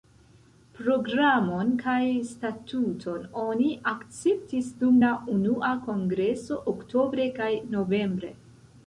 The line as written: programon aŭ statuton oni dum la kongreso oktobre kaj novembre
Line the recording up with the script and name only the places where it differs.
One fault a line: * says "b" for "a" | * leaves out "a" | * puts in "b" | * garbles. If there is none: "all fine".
* says "kaj" for "aŭ"
* puts in "akceptis"
* puts in "unua"